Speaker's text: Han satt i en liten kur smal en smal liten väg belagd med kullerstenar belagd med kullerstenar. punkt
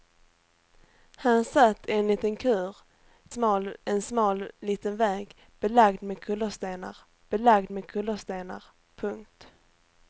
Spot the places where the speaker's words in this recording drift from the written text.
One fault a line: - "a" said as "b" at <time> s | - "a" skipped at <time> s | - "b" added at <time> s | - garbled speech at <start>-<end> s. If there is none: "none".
none